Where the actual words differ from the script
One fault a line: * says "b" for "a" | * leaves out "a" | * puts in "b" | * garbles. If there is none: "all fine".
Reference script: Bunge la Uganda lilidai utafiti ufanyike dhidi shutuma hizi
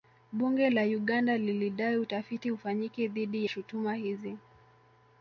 all fine